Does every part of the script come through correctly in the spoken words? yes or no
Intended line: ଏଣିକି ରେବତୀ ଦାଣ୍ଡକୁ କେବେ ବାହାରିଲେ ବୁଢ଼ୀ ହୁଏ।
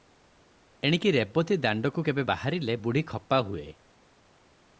no